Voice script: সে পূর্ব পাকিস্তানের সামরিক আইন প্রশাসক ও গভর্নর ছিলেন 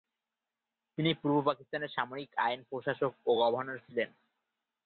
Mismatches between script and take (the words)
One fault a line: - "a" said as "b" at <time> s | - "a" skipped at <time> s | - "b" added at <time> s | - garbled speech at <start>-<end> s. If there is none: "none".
- "সে" said as "তিনি" at 1.0 s